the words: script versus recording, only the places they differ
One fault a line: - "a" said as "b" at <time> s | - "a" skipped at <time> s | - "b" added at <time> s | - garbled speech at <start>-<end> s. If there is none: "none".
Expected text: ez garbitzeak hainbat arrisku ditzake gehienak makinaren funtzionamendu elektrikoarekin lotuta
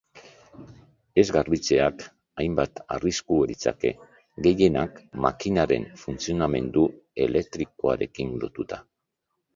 none